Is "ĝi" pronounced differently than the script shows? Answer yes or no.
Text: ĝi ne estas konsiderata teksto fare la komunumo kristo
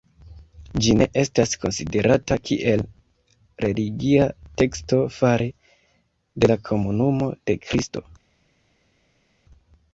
no